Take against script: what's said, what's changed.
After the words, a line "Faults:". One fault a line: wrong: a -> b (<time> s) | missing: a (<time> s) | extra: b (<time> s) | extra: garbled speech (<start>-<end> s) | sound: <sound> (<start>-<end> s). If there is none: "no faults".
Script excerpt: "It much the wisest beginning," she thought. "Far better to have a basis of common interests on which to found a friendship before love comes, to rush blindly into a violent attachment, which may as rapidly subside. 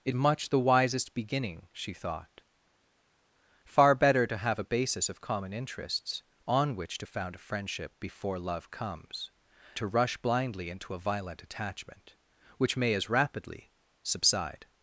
"It much the wisest beginning," she thought. "Far better to have a basis of common interests on which to found a friendship before love comes, to rush blindly into a violent attachment, which may as rapidly subside.
Faults:
no faults